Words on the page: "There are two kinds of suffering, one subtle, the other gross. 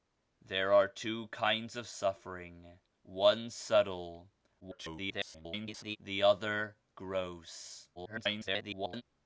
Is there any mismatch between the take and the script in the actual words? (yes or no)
yes